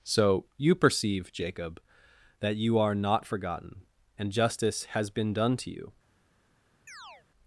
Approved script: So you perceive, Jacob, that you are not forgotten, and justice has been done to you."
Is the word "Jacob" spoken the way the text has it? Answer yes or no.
yes